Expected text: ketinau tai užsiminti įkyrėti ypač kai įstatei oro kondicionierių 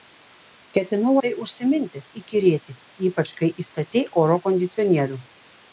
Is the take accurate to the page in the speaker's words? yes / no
yes